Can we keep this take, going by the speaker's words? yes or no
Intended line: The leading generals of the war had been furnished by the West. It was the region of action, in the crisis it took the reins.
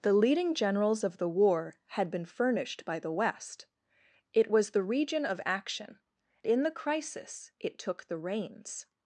yes